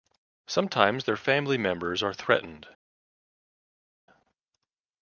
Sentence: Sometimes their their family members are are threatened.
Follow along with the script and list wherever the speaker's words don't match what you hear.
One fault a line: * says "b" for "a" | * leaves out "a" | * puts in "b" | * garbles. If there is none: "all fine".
* leaves out "their"
* leaves out "are"